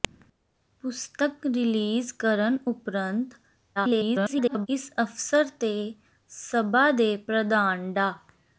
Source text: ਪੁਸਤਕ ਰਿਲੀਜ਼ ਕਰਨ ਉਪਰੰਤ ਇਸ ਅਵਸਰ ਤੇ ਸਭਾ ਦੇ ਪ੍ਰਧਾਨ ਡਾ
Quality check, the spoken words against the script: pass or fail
fail